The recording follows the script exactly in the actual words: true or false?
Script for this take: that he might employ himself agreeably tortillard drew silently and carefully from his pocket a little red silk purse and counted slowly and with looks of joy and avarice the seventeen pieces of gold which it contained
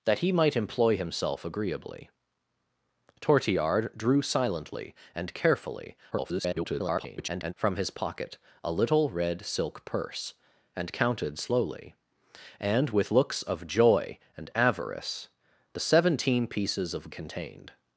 false